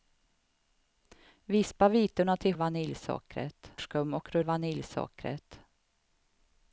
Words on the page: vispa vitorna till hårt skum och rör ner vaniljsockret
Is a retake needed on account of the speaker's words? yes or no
yes